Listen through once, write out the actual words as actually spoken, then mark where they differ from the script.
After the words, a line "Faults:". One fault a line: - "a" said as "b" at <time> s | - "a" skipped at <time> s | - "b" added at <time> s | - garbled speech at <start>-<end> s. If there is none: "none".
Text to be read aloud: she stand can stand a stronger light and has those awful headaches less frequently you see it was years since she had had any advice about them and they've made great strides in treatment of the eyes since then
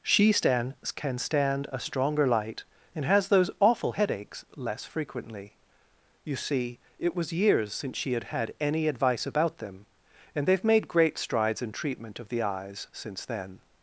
she stand can stand a stronger light and has those awful headaches less frequently you see it was years since she had had any advice about them and they've made great strides in treatment of the eyes since then
Faults:
none